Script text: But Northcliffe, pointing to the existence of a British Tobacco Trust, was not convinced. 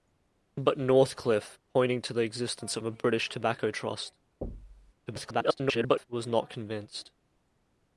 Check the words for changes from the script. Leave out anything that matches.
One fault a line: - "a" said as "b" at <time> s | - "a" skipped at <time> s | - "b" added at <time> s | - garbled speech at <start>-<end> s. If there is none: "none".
- garbled speech at 5.1-6.1 s